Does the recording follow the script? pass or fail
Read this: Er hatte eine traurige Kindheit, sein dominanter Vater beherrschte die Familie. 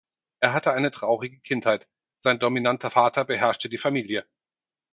pass